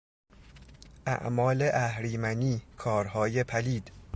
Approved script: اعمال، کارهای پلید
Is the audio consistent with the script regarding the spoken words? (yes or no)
no